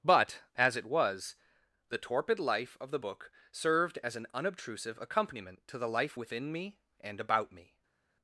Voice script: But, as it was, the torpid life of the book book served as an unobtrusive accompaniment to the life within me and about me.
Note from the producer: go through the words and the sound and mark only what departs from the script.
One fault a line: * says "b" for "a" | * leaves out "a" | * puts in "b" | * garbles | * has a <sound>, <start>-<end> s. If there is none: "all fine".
* leaves out "book"